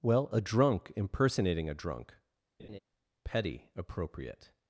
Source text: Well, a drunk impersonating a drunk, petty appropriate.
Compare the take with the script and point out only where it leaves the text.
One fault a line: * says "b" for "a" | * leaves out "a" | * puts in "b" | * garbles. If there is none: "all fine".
all fine